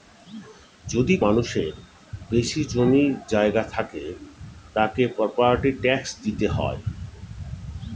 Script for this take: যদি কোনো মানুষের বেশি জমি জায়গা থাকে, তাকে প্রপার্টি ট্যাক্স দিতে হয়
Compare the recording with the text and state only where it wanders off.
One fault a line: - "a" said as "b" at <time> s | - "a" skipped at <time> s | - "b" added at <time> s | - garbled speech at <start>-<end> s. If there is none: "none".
- "কোনো" skipped at 1.1 s